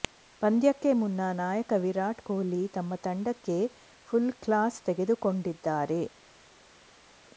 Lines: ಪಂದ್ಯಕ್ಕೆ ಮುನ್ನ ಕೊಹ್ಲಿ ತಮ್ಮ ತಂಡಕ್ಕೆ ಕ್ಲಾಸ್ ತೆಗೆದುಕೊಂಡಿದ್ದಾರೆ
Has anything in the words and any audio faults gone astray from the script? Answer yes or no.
yes